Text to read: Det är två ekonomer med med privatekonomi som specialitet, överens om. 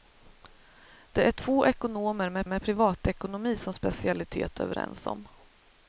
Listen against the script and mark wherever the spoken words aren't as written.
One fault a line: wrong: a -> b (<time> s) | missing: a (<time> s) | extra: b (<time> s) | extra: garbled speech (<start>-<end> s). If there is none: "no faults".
no faults